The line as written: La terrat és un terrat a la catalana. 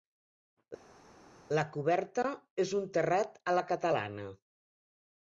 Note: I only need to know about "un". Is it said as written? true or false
true